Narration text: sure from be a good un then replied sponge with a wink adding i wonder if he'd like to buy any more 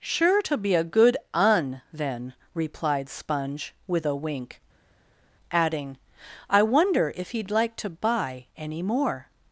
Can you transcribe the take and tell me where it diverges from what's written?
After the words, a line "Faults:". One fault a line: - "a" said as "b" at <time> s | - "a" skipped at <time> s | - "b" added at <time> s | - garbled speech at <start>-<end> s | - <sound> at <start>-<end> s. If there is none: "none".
sure to be a good un then replied sponge with a wink adding i wonder if he'd like to buy any more
Faults:
- "from" said as "to" at 0.4 s